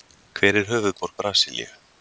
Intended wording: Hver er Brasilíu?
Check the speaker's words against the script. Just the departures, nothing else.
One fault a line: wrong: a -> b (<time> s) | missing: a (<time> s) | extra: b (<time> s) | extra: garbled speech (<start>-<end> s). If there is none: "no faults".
extra: höfuðborg (0.7 s)